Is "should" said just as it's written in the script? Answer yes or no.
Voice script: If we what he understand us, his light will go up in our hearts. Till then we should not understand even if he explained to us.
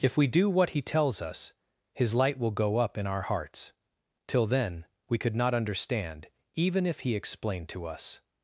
no